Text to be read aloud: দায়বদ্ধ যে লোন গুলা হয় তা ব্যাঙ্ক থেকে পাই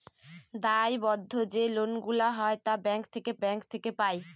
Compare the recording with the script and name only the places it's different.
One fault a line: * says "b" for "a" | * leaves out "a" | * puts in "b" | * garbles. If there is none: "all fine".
* puts in "ব্যাঙ্ক থেকে"